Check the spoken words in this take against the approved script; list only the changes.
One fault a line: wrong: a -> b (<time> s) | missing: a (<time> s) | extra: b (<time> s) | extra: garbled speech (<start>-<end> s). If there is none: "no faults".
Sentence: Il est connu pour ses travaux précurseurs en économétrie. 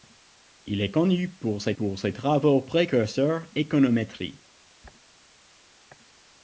extra: pour ses (1.7 s)
missing: en (3.5 s)